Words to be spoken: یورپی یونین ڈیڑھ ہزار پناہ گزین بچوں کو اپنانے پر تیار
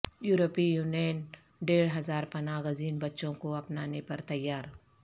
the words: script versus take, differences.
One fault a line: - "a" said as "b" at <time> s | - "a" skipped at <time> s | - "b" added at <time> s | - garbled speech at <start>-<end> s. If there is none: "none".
none